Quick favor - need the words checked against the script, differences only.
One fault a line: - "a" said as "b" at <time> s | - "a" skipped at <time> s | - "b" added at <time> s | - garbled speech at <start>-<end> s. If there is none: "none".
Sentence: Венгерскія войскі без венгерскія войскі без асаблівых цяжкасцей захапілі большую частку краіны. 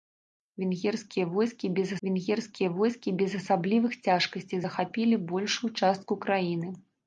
none